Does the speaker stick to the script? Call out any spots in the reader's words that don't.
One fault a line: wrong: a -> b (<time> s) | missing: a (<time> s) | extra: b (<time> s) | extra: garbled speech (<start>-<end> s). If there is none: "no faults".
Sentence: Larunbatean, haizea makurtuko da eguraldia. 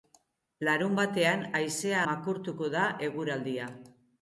no faults